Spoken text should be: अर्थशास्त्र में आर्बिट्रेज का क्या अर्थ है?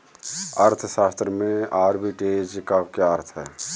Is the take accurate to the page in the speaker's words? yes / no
yes